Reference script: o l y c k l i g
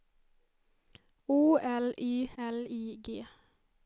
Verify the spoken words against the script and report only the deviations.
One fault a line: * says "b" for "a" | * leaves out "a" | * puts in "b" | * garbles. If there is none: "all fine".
* leaves out "c k"